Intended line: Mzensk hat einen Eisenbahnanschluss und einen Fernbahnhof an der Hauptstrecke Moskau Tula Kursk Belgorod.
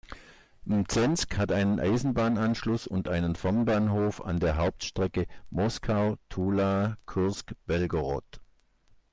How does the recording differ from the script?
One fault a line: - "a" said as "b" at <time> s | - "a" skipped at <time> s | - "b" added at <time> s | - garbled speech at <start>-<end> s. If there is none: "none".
none